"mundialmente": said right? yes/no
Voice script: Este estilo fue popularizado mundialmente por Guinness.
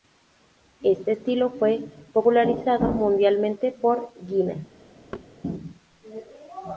yes